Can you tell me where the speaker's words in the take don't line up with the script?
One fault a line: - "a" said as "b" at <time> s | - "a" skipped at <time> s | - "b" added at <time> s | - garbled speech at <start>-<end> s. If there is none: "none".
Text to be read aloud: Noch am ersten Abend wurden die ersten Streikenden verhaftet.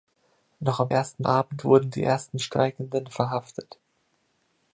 none